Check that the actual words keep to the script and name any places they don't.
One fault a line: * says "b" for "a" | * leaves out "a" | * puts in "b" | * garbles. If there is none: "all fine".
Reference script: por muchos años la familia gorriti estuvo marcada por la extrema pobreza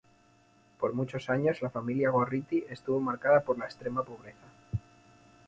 all fine